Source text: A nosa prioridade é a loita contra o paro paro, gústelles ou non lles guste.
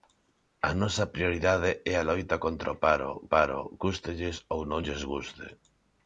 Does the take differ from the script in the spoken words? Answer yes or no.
no